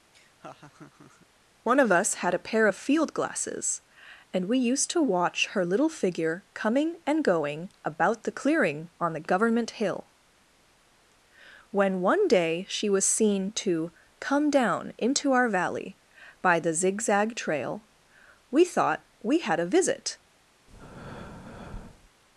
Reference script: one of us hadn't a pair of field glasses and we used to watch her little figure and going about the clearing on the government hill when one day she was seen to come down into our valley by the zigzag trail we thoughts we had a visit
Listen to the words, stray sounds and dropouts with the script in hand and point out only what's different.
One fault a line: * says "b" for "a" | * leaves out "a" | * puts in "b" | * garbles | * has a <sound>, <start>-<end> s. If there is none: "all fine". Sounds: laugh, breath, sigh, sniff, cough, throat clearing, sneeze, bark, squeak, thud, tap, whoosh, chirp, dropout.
* has a laugh, 0.1-1.3 s
* says "had" for "hadn't"
* puts in "coming"
* says "thought" for "thoughts"
* has a breath, 20.7-22.1 s